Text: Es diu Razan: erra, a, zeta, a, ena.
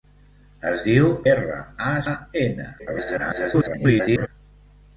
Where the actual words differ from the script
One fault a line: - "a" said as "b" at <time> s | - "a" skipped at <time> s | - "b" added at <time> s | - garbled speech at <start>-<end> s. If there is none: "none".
- "Razan" skipped at 1.1 s
- "zeta" skipped at 1.9 s
- garbled speech at 2.8-4.3 s